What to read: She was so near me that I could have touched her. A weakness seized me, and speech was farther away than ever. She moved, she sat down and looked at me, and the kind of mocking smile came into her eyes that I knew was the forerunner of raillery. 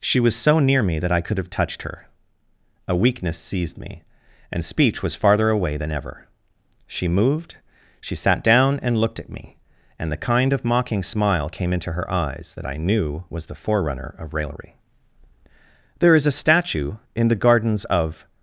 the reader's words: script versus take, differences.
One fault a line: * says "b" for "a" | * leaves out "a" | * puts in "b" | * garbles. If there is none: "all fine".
* puts in "There is a statue in the gardens of"